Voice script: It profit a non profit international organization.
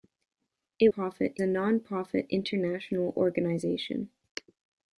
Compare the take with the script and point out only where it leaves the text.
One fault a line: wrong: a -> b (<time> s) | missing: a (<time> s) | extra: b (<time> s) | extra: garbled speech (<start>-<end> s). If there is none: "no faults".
no faults